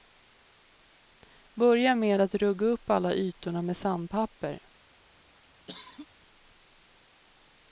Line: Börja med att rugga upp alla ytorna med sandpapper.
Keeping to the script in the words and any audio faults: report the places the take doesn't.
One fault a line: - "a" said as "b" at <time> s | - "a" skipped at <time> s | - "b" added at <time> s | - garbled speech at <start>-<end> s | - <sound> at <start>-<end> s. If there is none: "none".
- cough at 5.7-6.1 s